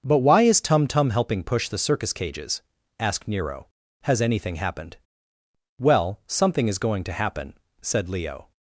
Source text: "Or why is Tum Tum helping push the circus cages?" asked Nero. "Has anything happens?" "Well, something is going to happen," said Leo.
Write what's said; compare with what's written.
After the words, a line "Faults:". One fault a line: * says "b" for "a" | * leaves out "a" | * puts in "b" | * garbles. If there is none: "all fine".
"But why is Tum Tum helping push the circus cages?" asked Nero. "Has anything happened?" "Well, something is going to happen," said Leo.
Faults:
* says "But" for "Or"
* says "happened" for "happens"